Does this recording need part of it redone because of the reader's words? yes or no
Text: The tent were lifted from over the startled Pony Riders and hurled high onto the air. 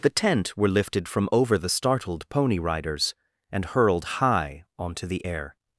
no